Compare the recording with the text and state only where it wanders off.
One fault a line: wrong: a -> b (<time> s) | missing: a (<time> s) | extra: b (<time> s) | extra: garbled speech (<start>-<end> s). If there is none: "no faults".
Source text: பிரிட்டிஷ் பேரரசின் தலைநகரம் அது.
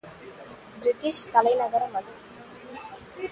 missing: பேரரசின் (1.2 s)